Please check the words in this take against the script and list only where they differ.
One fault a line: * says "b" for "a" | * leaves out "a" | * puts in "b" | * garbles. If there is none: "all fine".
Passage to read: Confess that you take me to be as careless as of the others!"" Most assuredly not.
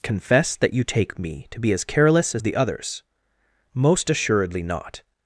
all fine